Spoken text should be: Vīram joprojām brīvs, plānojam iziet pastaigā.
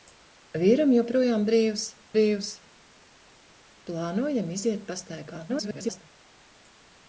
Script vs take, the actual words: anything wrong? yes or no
yes